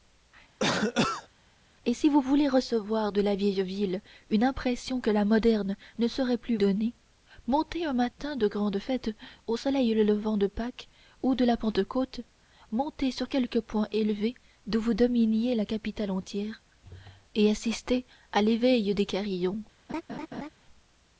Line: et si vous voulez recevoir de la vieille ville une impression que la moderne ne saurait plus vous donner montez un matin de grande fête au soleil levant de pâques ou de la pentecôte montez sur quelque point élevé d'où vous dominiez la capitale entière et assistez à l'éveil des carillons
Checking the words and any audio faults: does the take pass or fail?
fail